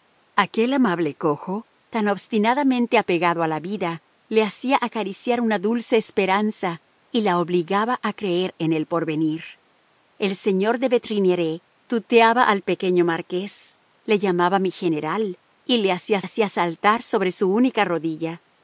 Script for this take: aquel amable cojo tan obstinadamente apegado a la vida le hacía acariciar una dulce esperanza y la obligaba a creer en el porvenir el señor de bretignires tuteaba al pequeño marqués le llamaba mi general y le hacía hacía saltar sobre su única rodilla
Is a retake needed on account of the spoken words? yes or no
no